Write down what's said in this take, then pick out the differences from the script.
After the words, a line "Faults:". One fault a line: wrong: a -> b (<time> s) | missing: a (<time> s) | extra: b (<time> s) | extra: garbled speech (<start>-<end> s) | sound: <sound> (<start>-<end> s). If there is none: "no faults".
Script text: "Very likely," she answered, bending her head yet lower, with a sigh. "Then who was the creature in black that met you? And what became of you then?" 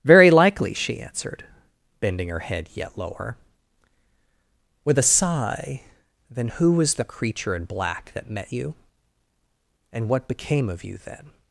"Very likely," she answered, bending her head yet lower, with a sigh. "Then who was the creature in black that met you? And what became of you then?"
Faults:
no faults